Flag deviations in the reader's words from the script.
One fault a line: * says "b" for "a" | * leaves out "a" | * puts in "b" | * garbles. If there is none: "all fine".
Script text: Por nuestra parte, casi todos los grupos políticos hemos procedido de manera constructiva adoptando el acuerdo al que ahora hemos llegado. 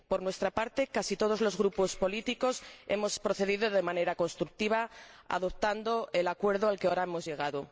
all fine